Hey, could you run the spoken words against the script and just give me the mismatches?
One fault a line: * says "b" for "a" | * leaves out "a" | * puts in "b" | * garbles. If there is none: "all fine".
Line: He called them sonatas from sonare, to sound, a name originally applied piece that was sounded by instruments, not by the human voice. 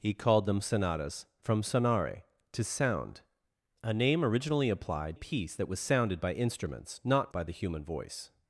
all fine